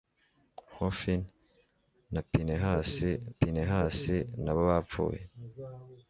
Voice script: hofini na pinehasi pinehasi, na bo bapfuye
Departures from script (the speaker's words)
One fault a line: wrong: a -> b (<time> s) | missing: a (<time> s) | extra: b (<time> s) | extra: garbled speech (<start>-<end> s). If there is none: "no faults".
no faults